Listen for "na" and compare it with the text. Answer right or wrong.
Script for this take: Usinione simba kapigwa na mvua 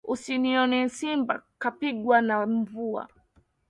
right